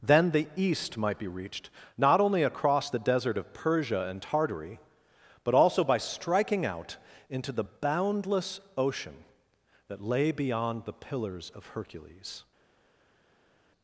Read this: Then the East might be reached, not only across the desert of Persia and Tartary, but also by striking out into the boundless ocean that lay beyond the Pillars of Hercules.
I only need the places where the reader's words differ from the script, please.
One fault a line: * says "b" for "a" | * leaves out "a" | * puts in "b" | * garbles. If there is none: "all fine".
all fine